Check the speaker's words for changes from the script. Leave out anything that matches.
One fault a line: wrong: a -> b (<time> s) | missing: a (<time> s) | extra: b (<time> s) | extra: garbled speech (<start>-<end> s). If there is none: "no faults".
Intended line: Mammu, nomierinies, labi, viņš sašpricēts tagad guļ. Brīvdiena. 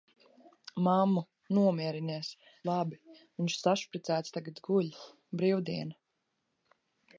no faults